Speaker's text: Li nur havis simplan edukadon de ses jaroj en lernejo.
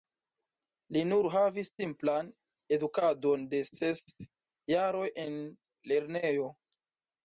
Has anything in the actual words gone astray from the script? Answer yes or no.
no